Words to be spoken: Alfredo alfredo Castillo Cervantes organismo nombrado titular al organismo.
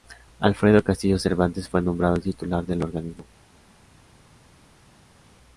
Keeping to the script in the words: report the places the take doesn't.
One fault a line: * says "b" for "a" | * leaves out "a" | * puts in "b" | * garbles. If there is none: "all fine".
* leaves out "alfredo"
* says "fue" for "organismo"
* says "del" for "al"